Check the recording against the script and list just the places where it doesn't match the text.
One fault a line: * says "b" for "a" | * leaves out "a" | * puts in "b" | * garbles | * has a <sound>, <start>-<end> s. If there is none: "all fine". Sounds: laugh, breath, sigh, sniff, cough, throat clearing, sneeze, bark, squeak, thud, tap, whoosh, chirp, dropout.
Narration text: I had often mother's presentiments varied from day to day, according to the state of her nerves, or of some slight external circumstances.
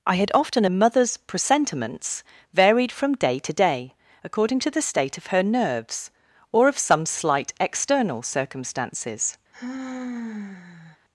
* has a sigh, 9.5-11.0 s